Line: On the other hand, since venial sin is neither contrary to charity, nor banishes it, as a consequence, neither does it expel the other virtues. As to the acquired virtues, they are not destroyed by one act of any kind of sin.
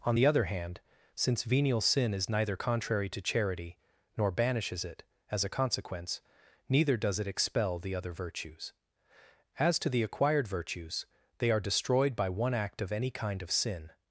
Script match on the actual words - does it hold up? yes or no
no